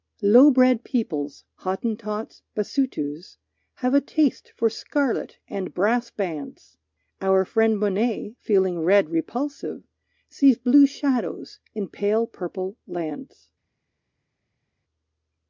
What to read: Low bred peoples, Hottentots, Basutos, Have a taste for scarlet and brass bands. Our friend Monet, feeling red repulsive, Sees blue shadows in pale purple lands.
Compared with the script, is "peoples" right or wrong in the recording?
right